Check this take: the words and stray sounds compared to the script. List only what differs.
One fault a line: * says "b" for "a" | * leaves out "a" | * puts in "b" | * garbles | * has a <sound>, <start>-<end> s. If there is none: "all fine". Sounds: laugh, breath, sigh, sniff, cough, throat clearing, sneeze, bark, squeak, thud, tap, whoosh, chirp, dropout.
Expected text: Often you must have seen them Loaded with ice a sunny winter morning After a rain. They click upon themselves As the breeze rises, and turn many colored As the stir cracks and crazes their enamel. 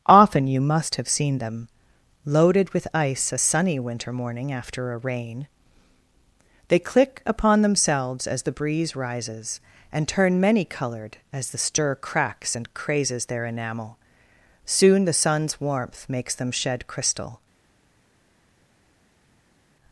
* puts in "Soon the sun's warmth makes them shed crystal"